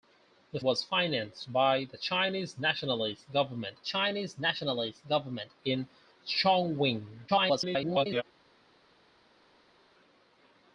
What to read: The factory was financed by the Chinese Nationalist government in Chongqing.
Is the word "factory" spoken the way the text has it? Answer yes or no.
no